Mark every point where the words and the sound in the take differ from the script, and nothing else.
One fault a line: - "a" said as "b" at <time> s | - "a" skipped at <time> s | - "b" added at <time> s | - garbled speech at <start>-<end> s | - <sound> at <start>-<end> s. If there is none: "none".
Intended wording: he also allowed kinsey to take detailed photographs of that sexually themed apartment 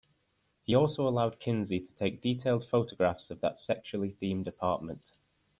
none